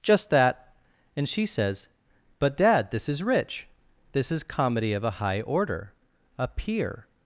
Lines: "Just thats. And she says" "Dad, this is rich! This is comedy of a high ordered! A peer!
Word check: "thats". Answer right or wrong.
wrong